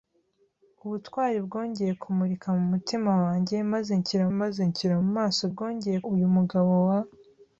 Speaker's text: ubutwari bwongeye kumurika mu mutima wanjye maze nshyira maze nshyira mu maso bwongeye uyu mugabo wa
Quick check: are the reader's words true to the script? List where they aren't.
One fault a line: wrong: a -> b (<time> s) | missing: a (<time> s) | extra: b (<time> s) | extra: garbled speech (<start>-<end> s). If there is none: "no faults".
no faults